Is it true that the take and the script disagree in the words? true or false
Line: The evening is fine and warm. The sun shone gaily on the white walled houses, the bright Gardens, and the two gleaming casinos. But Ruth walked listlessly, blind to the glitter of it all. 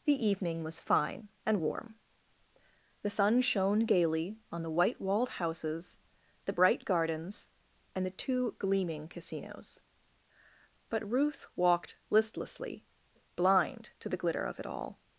true